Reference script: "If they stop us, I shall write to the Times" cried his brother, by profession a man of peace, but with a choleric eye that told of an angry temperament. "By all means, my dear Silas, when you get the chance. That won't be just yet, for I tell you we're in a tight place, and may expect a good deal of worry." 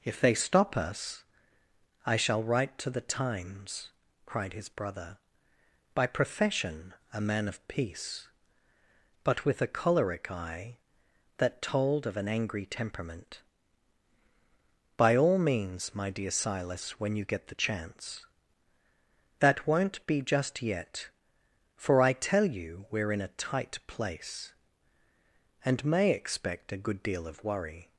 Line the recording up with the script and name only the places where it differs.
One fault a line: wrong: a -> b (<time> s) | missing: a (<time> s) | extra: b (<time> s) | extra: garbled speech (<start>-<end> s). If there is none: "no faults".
no faults